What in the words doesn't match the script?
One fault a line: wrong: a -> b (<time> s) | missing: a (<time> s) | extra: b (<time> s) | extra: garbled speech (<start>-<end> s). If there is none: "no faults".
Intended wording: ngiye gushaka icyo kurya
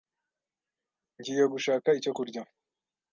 no faults